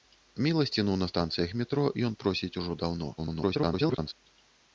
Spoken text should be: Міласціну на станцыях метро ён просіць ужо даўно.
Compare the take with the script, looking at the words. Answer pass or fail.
fail